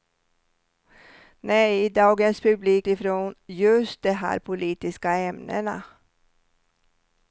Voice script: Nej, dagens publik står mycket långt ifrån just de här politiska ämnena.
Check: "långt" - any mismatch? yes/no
yes